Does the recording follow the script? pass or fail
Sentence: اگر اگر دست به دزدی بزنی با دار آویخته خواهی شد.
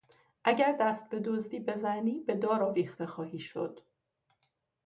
fail